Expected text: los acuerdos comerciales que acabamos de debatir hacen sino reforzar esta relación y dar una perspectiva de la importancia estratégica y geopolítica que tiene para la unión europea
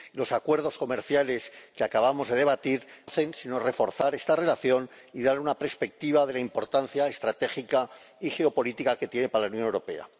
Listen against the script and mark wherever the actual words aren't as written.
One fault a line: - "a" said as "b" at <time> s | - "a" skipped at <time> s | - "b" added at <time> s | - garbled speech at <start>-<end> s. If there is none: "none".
none